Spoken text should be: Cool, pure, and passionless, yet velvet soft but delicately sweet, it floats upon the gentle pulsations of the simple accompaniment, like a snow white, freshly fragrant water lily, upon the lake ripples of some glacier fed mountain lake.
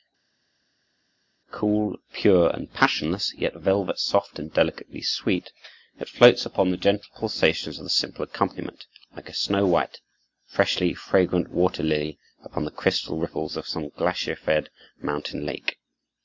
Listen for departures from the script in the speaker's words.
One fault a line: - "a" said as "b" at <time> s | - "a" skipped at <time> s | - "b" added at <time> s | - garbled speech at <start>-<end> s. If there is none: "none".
- "but" said as "and" at 4.4 s
- "lake" said as "crystal" at 12.7 s